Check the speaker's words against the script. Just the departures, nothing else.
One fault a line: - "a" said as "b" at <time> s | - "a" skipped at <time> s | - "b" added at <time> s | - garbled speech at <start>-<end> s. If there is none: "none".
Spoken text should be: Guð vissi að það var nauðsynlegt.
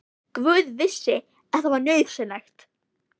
none